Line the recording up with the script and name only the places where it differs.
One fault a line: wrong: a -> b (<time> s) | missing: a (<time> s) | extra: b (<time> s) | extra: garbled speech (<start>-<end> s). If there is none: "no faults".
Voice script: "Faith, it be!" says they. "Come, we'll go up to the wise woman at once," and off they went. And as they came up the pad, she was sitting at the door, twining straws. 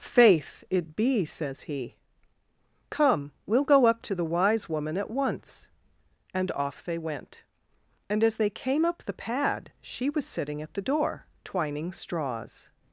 wrong: they -> he (1.6 s)